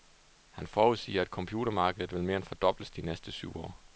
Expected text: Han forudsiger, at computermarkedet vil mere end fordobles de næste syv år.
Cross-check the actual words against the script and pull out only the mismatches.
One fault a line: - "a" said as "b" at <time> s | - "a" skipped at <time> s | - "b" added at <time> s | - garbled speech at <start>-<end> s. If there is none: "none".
none